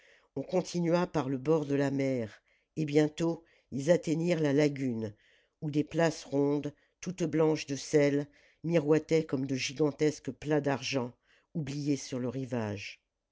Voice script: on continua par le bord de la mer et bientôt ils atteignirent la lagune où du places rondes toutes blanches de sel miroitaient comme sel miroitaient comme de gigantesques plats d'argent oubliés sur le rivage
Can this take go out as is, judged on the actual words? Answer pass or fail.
fail